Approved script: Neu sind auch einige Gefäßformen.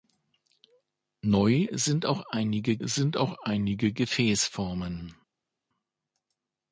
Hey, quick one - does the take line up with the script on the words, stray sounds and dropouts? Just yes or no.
no